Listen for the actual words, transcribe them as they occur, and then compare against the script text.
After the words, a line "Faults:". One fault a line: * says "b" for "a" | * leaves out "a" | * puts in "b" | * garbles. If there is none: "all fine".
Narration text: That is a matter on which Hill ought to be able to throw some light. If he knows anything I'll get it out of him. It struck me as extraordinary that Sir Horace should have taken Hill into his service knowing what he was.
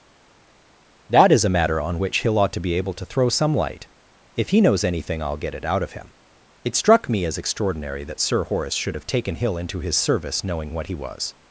That is a matter on which Hill ought to be able to throw some light. If he knows anything I'll get it out of him. It struck me as extraordinary that Sir Horace should have taken Hill into his service knowing what he was.
Faults:
all fine